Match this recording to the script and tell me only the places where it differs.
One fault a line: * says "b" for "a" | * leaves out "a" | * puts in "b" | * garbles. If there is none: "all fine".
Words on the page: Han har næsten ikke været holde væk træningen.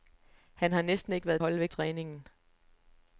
all fine